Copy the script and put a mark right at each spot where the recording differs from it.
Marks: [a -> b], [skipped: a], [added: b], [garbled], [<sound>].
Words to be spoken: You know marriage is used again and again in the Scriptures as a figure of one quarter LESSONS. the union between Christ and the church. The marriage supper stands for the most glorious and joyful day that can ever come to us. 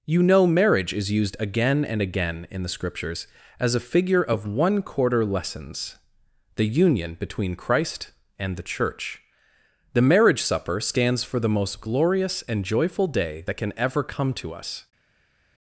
You know marriage is used again and again in the Scriptures as a figure of one quarter LESSONS. the union between Christ and the church. The marriage supper stands for the most glorious and joyful day that can ever come to us.